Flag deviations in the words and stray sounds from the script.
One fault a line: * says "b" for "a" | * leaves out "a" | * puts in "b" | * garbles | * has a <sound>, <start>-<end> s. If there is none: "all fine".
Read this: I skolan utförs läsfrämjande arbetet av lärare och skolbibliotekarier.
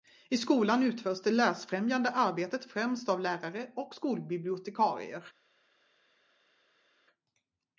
* puts in "det"
* puts in "främst"